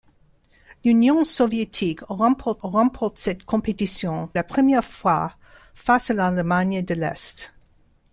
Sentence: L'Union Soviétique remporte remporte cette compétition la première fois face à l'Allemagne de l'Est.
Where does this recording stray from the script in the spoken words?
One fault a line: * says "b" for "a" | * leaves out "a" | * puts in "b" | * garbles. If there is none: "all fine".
all fine